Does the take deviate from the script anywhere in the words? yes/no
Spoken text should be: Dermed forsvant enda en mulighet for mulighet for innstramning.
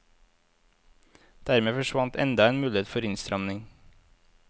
yes